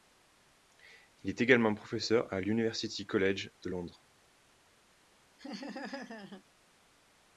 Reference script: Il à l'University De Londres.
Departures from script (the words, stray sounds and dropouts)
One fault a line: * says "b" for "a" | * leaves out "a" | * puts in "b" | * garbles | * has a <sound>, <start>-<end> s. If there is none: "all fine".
* puts in "est également professeur"
* puts in "College"
* has a laugh, 5.4-6.4 s